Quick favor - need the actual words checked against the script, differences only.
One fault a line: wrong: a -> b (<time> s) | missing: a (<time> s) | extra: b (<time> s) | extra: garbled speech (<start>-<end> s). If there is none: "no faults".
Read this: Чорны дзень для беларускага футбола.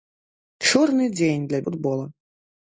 missing: беларускага (1.6 s)